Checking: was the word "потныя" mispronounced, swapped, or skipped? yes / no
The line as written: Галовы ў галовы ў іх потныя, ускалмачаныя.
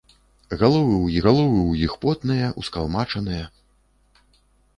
no